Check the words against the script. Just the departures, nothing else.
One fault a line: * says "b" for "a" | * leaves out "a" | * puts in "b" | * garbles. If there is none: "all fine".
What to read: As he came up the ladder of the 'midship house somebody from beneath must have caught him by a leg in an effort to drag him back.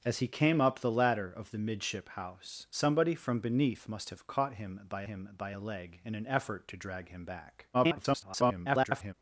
* puts in "him by"
* garbles